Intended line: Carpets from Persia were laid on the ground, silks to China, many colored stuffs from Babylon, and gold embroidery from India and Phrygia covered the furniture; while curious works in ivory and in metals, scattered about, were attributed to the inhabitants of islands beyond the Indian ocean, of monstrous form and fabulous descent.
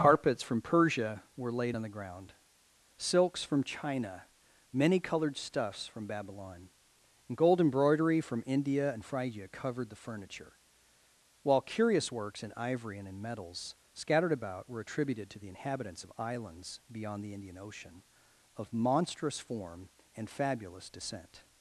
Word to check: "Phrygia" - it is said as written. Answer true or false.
true